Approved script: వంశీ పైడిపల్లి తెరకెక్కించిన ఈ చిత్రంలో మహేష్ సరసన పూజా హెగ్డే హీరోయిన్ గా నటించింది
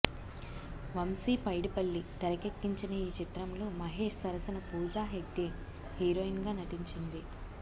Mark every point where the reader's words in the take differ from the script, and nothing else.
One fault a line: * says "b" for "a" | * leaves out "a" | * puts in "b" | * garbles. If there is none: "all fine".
all fine